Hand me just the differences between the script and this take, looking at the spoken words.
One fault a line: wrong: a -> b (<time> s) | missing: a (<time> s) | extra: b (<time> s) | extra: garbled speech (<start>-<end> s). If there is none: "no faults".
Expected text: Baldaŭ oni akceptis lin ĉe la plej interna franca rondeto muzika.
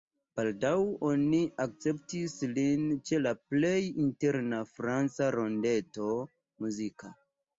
no faults